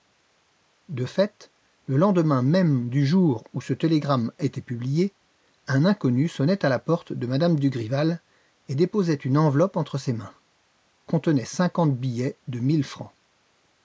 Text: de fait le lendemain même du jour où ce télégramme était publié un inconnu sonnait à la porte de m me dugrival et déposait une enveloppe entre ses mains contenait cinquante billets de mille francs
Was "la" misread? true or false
false